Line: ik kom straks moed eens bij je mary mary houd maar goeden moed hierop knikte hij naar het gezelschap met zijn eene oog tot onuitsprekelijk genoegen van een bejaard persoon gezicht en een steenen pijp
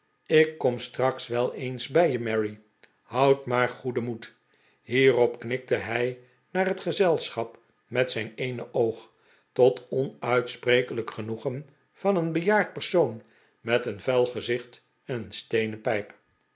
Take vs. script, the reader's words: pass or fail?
fail